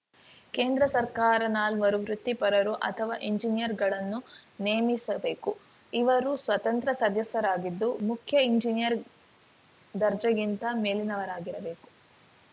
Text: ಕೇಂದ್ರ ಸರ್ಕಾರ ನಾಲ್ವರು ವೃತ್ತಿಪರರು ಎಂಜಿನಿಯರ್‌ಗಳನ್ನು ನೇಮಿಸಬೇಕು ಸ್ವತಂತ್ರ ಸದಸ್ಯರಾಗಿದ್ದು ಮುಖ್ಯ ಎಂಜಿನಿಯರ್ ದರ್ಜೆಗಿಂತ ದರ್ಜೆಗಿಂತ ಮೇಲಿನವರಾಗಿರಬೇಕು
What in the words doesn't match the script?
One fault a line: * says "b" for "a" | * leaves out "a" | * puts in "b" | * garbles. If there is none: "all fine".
* puts in "ಅಥವಾ"
* puts in "ಇವರು"
* leaves out "ದರ್ಜೆಗಿಂತ"